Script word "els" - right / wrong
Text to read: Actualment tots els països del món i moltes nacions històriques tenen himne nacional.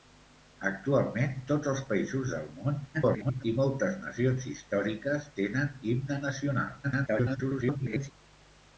right